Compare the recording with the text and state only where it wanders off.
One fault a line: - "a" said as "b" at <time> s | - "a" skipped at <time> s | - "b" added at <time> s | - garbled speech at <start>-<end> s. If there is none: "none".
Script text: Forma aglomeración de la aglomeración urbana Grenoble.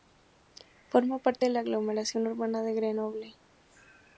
- "aglomeración" said as "parte" at 1.2 s
- "de" added at 2.6 s